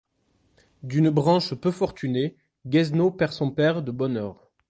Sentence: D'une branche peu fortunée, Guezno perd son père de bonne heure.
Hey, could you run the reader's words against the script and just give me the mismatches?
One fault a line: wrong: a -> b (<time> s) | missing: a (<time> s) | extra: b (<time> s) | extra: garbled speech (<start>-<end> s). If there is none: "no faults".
no faults